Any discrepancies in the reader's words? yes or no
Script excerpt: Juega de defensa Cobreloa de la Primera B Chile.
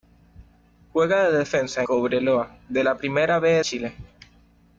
no